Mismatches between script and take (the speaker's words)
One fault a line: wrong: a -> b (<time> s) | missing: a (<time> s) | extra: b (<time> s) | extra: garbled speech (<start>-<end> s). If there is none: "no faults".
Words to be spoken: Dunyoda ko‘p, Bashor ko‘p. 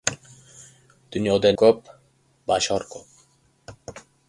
no faults